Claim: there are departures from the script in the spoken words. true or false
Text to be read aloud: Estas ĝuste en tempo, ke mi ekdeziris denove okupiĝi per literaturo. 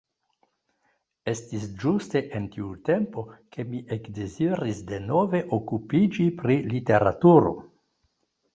true